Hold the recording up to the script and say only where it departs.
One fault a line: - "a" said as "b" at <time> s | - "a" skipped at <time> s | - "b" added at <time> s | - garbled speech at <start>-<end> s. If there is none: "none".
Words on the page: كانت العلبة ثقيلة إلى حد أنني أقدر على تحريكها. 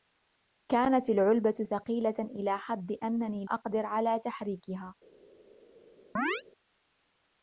none